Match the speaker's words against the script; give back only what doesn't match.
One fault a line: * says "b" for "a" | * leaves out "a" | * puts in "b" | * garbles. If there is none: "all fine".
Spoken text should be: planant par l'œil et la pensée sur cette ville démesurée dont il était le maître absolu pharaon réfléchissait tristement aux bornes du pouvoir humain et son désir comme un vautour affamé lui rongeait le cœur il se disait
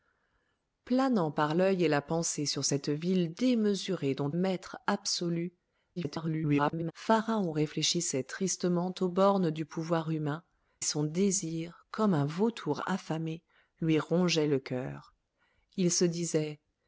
* leaves out "il était le"
* garbles
* leaves out "et"